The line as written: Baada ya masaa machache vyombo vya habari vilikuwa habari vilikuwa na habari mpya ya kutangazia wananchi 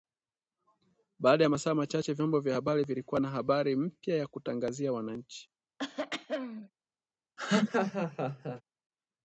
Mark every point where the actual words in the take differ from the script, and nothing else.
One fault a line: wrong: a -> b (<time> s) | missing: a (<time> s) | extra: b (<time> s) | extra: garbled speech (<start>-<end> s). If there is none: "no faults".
missing: habari vilikuwa (3.2 s)